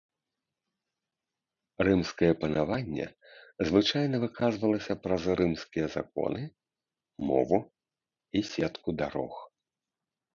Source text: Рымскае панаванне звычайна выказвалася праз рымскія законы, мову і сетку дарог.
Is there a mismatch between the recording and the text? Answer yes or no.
no